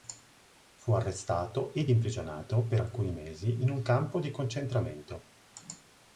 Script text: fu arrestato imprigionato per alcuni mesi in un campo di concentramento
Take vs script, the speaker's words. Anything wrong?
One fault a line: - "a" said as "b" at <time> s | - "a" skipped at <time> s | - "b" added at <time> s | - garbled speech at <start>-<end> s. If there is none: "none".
- "ed" added at 1.7 s